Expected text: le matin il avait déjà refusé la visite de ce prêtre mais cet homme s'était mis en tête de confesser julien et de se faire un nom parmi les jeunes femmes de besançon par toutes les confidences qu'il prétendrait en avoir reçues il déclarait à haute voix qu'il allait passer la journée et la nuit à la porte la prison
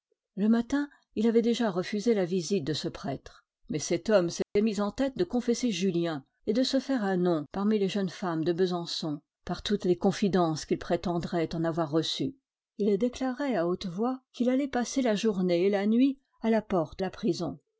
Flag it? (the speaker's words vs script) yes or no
no